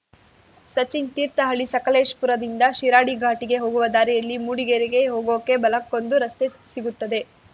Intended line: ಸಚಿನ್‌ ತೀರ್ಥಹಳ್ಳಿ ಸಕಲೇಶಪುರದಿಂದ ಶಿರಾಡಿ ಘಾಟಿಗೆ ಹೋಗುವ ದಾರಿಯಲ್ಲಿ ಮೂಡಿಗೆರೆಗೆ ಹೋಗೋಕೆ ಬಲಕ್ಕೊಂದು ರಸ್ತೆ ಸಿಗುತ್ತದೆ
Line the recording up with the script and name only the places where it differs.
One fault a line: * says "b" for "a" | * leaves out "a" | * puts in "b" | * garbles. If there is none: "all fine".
all fine